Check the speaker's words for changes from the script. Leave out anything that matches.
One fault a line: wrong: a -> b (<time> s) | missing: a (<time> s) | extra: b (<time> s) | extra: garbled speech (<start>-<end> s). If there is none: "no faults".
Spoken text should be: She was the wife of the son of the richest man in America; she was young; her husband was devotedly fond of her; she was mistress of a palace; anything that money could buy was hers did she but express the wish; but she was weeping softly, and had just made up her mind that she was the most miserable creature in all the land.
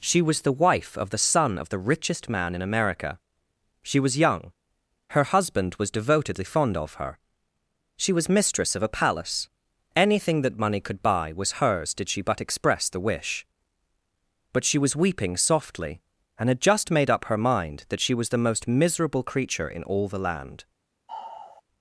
no faults